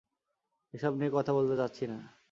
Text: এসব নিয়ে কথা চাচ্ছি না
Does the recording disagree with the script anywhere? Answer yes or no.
yes